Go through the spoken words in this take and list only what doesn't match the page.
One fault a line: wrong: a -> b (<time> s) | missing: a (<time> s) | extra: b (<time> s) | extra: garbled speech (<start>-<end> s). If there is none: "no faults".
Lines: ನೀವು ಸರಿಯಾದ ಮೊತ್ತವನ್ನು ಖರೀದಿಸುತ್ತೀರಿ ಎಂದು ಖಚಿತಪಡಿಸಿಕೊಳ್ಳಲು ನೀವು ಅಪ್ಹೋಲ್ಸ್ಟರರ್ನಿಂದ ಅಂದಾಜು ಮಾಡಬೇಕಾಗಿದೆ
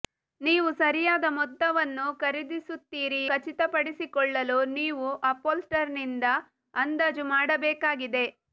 missing: ಎಂದು (3.2 s)